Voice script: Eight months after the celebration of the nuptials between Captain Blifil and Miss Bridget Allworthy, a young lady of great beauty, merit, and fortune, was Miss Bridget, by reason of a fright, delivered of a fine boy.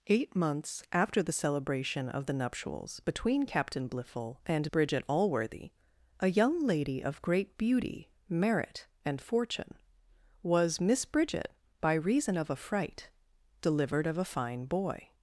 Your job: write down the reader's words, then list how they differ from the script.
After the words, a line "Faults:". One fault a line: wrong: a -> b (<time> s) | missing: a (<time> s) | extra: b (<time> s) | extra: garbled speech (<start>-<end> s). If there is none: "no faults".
Eight months after the celebration of the nuptials between Captain Blifil and Bridget Allworthy, a young lady of great beauty, merit, and fortune, was Miss Bridget, by reason of a fright, delivered of a fine boy.
Faults:
missing: Miss (4.7 s)